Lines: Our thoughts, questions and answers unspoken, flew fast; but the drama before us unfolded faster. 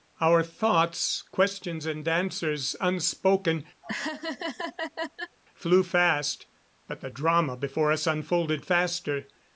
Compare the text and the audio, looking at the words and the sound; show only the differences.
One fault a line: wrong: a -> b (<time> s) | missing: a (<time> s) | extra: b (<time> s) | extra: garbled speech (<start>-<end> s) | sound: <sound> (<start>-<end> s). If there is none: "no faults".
sound: laugh (3.8-5.4 s)